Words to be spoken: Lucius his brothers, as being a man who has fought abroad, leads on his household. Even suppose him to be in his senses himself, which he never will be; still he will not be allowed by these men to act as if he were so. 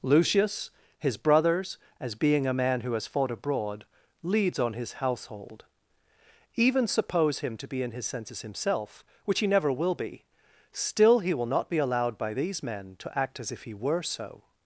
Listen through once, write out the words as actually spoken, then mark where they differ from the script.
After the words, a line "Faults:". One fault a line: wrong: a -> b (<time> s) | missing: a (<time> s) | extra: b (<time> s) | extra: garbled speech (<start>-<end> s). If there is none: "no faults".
Lucius his brothers, as being a man who has fought abroad, leads on his household. Even suppose him to be in his senses himself, which he never will be; still he will not be allowed by these men to act as if he were so.
Faults:
no faults